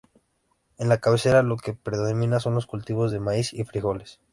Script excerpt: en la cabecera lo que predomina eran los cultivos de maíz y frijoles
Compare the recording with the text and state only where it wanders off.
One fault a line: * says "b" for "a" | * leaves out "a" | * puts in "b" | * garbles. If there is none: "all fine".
* says "son" for "eran"